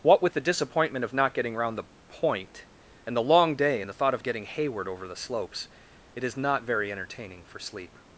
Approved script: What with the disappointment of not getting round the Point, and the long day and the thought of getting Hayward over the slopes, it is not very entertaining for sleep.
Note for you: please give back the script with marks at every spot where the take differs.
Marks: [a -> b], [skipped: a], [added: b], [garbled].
What with the disappointment of not getting round the Point, and the long day and the thought of getting Hayward over the slopes, it is not very entertaining for sleep.